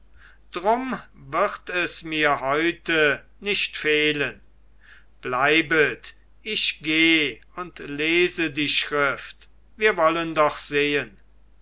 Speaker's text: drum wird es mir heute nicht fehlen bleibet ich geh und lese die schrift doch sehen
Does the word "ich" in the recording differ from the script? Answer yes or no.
no